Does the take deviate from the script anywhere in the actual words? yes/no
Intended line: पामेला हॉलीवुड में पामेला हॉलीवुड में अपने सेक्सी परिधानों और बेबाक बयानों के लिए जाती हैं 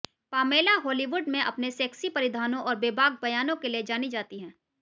yes